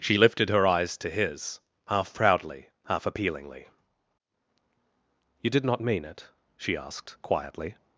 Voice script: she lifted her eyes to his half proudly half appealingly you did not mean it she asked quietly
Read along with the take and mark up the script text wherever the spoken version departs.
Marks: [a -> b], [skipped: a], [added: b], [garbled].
she lifted her eyes to his half proudly half appealingly you did not mean it she asked quietly